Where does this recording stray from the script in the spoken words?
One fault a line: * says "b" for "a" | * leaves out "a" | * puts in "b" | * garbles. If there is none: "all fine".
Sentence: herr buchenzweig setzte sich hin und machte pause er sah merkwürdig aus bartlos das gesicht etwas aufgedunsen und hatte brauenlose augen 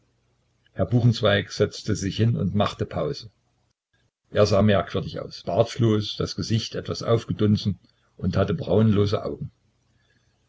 all fine